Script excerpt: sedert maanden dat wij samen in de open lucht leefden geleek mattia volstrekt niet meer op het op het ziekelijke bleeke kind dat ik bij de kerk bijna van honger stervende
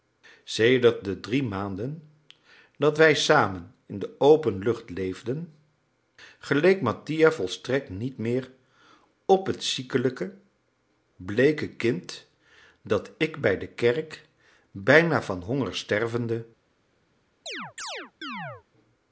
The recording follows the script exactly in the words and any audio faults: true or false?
false